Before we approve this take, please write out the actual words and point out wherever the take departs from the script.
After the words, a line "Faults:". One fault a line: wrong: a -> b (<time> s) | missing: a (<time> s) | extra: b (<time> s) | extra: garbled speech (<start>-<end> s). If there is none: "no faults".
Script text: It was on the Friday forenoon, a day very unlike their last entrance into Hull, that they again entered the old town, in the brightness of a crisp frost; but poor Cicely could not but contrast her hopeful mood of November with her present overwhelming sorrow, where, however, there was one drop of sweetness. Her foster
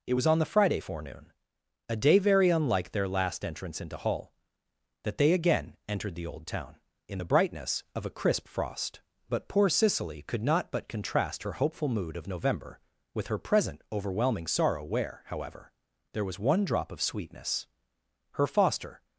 It was on the Friday forenoon, a day very unlike their last entrance into Hull, that they again entered the old town, in the brightness of a crisp frost; but poor Cicely could not but contrast her hopeful mood of November with her present overwhelming sorrow, where, however, there was one drop of sweetness. Her foster
Faults:
no faults